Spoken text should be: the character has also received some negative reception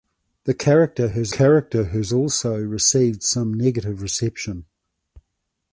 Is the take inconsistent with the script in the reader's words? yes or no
yes